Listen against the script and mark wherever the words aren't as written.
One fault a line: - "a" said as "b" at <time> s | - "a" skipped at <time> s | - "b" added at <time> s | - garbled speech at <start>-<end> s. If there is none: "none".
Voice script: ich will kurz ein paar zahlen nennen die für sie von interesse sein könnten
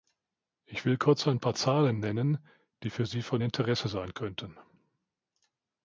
none